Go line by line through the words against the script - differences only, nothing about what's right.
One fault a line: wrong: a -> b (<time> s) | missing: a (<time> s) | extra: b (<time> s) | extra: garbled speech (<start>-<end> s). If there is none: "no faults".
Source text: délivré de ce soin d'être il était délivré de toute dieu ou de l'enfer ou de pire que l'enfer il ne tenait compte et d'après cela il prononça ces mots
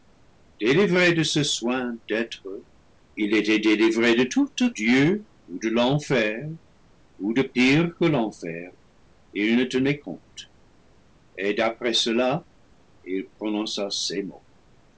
no faults